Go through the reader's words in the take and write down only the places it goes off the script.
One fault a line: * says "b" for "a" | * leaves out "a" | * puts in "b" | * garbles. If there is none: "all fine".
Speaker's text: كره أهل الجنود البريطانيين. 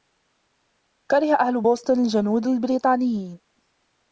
* puts in "بوسطن"